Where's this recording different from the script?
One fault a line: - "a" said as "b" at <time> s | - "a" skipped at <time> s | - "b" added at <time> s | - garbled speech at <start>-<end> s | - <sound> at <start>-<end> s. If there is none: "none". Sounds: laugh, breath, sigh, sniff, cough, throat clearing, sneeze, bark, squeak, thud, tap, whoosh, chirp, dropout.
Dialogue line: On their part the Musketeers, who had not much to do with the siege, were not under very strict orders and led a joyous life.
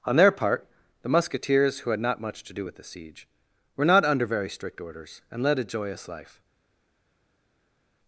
none